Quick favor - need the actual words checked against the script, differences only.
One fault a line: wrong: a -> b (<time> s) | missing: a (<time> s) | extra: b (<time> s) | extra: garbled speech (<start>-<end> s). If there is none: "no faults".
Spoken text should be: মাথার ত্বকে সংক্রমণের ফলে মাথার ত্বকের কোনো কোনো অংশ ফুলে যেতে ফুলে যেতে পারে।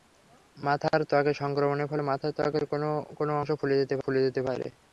no faults